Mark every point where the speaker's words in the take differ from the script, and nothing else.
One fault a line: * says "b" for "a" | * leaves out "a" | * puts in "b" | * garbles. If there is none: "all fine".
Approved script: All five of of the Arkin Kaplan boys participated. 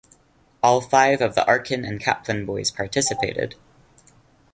* leaves out "of"
* puts in "and"